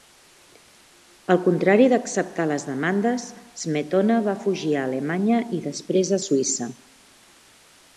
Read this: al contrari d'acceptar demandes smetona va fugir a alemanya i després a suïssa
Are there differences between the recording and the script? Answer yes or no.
yes